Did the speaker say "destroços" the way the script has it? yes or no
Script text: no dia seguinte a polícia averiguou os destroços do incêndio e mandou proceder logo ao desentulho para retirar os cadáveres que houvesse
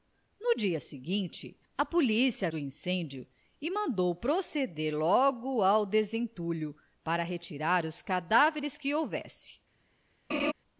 no